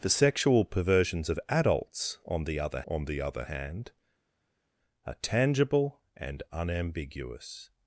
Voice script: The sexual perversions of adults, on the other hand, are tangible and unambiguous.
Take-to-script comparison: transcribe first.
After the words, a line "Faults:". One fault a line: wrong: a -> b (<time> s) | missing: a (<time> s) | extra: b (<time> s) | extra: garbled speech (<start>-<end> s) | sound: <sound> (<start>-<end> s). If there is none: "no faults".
The sexual perversions of adults, on the other on the other hand, are tangible and unambiguous.
Faults:
extra: on the other (2.8 s)